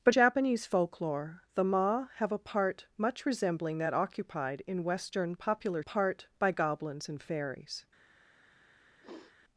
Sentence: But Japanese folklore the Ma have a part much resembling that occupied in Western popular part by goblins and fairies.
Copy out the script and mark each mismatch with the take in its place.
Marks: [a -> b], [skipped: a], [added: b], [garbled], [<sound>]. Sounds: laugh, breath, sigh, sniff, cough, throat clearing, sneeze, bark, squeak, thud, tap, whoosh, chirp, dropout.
But Japanese folklore the Ma have a part much resembling that occupied in Western popular part by goblins and fairies. [sniff]